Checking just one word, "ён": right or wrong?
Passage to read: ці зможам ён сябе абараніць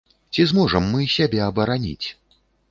wrong